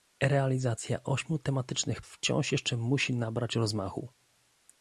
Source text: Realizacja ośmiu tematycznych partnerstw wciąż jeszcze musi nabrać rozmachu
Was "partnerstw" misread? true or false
true